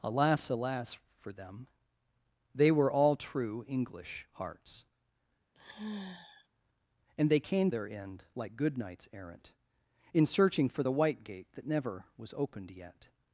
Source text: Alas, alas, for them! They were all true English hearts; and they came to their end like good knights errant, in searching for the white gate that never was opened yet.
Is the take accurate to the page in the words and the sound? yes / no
no